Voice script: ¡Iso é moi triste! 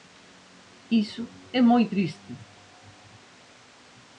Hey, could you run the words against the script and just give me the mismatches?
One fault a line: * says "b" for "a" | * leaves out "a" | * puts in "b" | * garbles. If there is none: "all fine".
all fine